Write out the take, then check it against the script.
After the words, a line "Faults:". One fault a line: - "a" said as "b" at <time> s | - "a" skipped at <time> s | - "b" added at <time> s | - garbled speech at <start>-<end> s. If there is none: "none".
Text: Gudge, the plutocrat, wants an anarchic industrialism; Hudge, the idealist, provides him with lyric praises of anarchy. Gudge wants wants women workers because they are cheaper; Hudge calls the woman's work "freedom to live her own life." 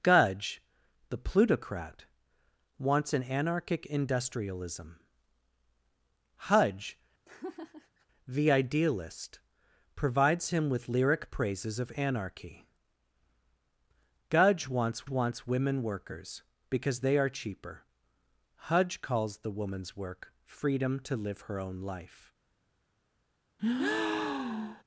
Gudge, the plutocrat, wants an anarchic industrialism; Hudge, the idealist, provides him with lyric praises of anarchy. Gudge wants wants women workers because they are cheaper; Hudge calls the woman's work "freedom to live her own life."
Faults:
none